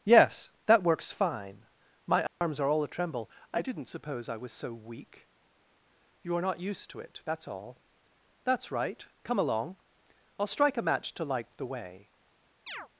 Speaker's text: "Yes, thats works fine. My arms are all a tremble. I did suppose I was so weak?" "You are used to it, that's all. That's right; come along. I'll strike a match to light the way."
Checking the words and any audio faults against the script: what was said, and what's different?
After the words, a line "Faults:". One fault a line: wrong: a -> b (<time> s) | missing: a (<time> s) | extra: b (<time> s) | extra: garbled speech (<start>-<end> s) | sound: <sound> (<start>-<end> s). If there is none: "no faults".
"Yes, that works fine. My arms are all a tremble. I didn't suppose I was so weak?" "You are not used to it, that's all. That's right; come along. I'll strike a match to light the way."
Faults:
wrong: thats -> that (0.7 s)
sound: dropout (2.3-2.4 s)
wrong: did -> didn't (3.6 s)
extra: not (6.4 s)
sound: chirp (12.7-12.9 s)